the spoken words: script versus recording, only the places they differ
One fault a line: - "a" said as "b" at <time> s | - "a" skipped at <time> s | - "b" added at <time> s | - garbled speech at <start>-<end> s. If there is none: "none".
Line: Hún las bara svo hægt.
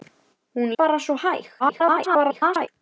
- "las" skipped at 0.7 s
- garbled speech at 1.6-2.7 s